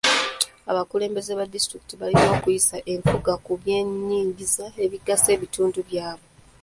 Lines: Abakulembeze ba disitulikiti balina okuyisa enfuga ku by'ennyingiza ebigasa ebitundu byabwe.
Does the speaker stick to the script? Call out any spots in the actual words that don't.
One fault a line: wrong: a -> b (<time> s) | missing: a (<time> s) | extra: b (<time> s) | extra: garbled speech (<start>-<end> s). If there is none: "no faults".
no faults